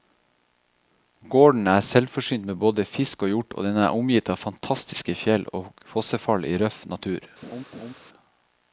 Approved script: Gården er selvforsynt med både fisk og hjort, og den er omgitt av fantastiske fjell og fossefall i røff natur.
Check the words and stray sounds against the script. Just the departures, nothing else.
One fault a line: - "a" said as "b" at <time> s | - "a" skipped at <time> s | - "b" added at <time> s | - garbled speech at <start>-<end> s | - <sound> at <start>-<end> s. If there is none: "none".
- laugh at 7.4-7.9 s